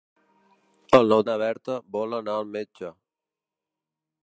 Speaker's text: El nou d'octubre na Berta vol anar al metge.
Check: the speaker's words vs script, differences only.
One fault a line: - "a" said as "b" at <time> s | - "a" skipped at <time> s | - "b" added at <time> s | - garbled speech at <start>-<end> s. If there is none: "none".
- "d'octubre" skipped at 1.2 s